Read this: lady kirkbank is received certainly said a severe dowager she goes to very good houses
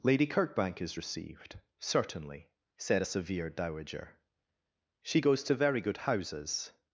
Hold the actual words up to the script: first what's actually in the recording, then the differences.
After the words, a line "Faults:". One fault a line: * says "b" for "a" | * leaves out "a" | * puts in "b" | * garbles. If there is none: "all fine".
lady kirkbank is received certainly said a severe dowager she goes to very good houses
Faults:
all fine